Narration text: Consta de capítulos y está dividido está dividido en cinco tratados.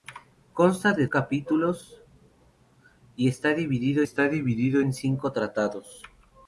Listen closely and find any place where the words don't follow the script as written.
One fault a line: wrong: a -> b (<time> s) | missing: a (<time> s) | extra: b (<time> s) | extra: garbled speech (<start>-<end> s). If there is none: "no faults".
no faults